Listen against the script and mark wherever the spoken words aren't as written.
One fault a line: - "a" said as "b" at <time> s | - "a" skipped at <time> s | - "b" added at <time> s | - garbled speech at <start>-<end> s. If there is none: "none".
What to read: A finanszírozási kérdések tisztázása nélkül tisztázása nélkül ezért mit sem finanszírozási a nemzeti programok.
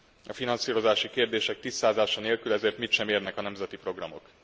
- "tisztázása nélkül" skipped at 2.5 s
- "finanszírozási" said as "érnek" at 3.1 s